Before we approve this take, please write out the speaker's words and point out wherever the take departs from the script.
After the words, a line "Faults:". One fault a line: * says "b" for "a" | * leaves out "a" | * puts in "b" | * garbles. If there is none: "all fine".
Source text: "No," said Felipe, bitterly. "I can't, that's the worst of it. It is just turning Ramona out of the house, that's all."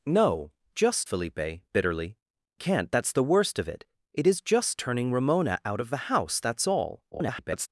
"No," just Felipe, bitterly. "can't, that's the worst of it. It is just turning Ramona out of the house, that's all." [garbled]
Faults:
* says "just" for "said"
* leaves out "I"
* garbles